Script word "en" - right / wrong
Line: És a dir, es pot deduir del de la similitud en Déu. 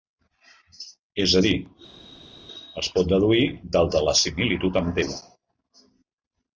wrong